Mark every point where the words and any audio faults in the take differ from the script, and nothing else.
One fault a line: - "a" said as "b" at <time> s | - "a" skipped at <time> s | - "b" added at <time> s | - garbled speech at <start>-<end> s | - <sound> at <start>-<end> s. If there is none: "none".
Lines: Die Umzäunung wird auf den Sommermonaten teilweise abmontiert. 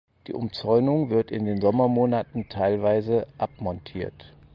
- "auf" said as "in" at 1.3 s